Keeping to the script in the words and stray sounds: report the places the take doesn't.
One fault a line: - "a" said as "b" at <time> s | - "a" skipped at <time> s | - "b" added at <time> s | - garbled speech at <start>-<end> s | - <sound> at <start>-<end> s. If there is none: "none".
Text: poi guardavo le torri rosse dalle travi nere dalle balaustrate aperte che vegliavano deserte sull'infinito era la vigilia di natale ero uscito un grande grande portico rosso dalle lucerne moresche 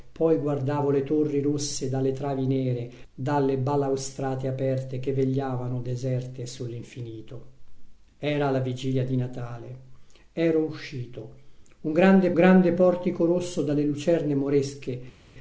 none